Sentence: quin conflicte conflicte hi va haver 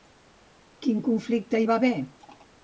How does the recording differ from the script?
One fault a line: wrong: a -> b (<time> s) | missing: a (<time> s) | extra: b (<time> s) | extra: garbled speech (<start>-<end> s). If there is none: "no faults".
missing: conflicte (1.6 s)